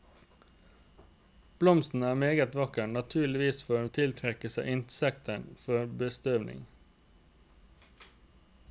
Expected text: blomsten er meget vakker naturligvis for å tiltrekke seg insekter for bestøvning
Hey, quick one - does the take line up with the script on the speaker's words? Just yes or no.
yes